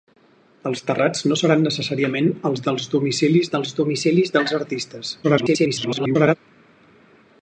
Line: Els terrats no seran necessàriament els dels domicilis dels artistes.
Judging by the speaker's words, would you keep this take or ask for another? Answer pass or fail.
fail